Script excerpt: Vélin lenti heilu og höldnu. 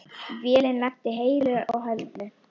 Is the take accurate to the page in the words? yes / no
yes